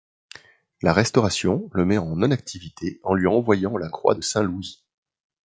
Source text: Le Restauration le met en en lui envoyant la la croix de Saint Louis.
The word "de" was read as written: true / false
true